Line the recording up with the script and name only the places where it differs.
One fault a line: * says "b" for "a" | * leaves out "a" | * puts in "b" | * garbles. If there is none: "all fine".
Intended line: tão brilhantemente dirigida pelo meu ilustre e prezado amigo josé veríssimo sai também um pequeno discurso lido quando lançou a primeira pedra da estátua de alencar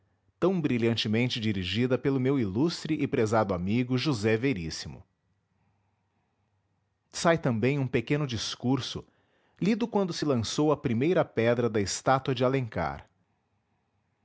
* puts in "se"